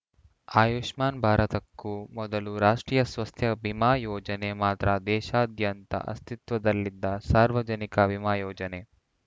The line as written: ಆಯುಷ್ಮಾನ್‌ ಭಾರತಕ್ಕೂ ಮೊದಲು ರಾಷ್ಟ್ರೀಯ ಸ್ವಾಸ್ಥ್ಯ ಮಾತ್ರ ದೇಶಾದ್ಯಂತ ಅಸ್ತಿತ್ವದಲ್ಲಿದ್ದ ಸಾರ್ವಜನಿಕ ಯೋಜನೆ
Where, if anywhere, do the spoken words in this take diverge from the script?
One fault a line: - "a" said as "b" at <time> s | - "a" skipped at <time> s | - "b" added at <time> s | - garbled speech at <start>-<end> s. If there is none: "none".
- "ಬಿಮಾ ಯೋಜನೆ" added at 3.6 s
- "ವಿಮಾ" added at 8.1 s